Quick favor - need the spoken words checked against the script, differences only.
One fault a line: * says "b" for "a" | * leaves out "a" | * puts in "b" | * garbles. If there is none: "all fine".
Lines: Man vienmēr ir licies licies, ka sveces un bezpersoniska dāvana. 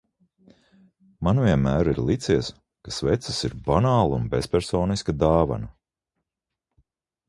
* leaves out "licies"
* puts in "ir banāla"